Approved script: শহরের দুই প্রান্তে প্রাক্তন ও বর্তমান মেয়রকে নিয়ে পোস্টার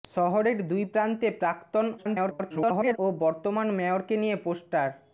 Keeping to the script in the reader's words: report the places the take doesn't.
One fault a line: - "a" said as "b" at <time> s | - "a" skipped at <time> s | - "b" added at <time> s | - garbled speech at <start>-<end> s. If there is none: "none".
- garbled speech at 2.0-3.0 s